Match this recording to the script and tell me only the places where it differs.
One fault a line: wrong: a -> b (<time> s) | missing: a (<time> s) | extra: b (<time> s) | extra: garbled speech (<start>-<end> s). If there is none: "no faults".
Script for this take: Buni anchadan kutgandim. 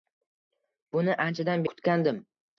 no faults